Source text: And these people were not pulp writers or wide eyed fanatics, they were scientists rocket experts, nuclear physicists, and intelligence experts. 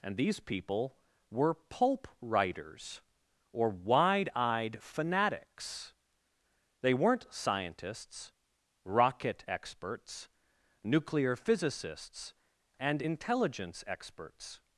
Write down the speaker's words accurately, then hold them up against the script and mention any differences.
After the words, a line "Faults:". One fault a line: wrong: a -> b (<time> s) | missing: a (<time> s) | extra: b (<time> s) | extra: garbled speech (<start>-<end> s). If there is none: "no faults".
And these people were pulp writers or wide eyed fanatics, they weren't scientists rocket experts, nuclear physicists, and intelligence experts.
Faults:
missing: not (1.5 s)
wrong: were -> weren't (6.9 s)